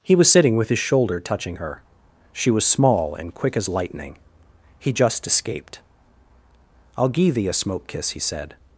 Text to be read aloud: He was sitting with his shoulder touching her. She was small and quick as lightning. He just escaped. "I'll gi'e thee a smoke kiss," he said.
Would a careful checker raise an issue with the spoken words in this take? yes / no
no